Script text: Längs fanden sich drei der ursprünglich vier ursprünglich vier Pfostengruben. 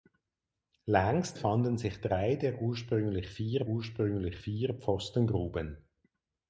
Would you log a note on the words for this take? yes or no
no